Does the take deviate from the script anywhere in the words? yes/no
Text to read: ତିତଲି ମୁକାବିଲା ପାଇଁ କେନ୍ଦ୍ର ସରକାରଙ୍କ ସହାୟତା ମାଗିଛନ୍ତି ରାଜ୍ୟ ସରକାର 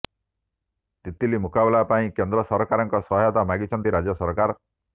no